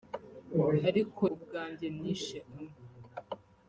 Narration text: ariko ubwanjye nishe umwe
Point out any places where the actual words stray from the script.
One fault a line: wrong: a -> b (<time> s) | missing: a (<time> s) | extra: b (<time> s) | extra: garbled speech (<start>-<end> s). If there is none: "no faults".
no faults